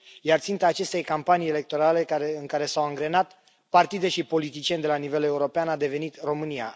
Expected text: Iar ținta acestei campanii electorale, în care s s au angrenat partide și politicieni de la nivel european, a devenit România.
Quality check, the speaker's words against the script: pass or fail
fail